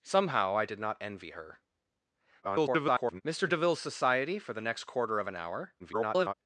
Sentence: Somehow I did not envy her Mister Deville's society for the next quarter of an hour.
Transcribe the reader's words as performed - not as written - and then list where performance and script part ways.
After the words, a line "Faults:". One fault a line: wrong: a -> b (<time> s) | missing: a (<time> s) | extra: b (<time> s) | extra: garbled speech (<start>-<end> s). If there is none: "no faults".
Somehow I did not envy her [garbled] Mister Deville's society for the next quarter of an hour. [garbled]
Faults:
extra: garbled speech (2.4-3.2 s)
extra: garbled speech (5.8-6.3 s)